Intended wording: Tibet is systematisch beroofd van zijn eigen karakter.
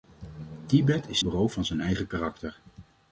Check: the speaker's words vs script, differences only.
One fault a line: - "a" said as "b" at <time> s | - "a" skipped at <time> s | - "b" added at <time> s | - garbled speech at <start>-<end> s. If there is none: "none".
- "systematisch" skipped at 1.2 s